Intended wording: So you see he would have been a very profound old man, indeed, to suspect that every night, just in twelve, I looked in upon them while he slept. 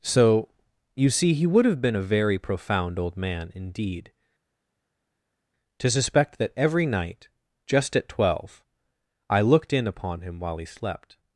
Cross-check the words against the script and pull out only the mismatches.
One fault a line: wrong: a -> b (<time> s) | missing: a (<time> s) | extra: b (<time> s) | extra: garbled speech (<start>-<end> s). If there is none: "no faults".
wrong: in -> at (8.0 s)
wrong: them -> him (10.2 s)